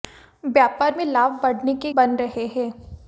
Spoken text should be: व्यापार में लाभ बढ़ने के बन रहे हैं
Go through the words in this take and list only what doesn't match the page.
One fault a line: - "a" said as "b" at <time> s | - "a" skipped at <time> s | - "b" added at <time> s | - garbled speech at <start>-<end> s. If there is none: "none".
none